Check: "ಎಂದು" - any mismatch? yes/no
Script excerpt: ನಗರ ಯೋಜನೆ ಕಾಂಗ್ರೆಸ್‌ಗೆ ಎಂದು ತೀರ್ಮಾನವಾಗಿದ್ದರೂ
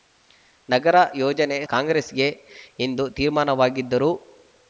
no